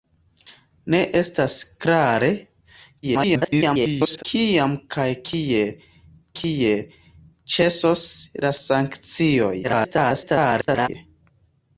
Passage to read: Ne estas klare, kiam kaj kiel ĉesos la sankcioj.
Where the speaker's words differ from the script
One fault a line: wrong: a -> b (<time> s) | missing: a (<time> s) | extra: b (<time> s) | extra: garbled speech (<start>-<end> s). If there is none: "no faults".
extra: garbled speech (3.0-4.2 s)
extra: kiel (6.4 s)
extra: garbled speech (9.6-10.9 s)